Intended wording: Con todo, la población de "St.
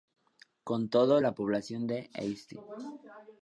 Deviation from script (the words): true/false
false